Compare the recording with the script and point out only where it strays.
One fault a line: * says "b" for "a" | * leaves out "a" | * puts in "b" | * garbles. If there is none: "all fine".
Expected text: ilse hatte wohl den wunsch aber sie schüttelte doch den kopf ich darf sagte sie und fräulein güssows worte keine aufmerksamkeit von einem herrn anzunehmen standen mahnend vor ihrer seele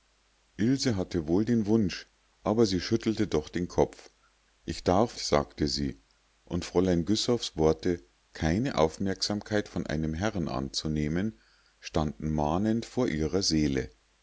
all fine